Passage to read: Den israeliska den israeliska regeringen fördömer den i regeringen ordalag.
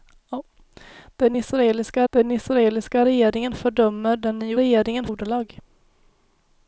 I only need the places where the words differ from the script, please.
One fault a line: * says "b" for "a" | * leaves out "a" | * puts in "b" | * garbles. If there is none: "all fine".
all fine